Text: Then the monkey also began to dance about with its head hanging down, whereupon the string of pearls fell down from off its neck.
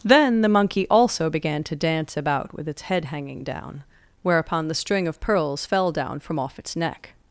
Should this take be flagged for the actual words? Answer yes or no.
no